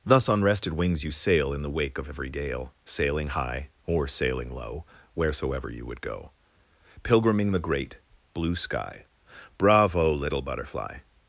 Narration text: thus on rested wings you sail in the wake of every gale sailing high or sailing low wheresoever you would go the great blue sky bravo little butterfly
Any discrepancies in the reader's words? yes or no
yes